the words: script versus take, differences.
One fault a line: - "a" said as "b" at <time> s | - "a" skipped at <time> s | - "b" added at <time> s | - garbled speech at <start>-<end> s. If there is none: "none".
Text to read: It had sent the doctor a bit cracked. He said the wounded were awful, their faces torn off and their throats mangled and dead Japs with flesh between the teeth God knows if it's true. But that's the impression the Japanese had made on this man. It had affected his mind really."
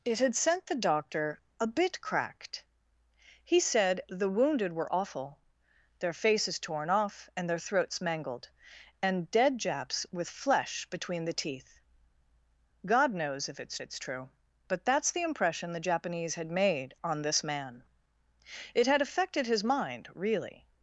- "it's" added at 13.8 s